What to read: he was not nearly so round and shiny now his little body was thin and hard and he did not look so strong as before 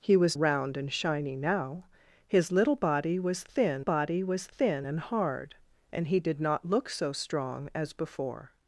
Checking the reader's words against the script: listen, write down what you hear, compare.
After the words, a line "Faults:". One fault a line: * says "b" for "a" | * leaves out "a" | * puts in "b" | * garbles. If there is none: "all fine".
he was round and shiny now his little body was thin body was thin and hard and he did not look so strong as before
Faults:
* leaves out "not nearly so"
* puts in "body was thin"